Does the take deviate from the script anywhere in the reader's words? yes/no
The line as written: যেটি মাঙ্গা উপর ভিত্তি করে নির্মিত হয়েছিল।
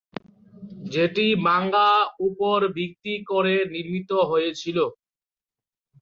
no